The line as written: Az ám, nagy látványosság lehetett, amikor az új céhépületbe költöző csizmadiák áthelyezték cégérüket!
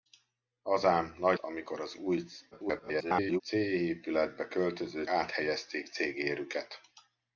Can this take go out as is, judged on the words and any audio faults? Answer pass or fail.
fail